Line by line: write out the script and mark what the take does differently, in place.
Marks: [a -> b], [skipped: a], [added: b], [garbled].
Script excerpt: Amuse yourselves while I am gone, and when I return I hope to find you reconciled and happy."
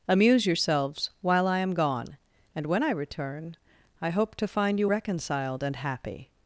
Amuse yourselves while I am gone, and when I return I hope to find you reconciled and happy."